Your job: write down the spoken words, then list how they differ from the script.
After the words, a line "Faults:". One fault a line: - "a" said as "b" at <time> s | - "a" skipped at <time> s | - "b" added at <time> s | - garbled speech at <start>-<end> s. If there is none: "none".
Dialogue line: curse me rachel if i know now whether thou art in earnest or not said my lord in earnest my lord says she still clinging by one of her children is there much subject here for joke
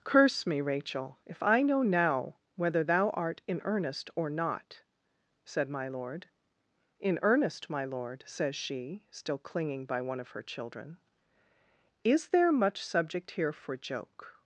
curse me rachel if i know now whether thou art in earnest or not said my lord in earnest my lord says she still clinging by one of her children is there much subject here for joke
Faults:
none